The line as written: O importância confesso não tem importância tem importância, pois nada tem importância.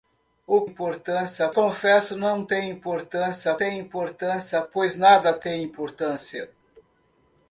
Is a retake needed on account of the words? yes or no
no